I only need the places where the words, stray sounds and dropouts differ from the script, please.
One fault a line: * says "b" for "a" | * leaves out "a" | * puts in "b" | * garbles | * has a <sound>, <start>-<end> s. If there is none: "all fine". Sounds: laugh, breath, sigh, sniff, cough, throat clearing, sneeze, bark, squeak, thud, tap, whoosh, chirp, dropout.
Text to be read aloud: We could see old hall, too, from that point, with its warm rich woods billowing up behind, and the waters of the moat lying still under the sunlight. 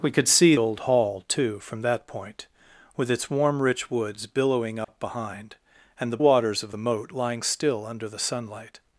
* has a dropout, 4.8-4.9 s